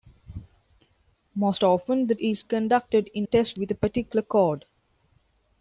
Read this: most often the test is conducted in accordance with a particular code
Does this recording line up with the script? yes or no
no